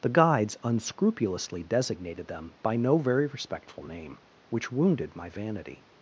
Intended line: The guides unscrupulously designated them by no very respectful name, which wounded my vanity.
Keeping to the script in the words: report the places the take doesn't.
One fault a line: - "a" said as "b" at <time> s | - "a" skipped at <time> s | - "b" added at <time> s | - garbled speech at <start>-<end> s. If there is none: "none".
none